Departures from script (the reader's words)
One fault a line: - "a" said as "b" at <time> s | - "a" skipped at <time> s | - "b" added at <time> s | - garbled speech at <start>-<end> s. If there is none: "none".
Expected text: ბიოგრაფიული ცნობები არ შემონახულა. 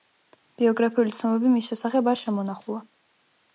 - "მის შესახებ" added at 1.6 s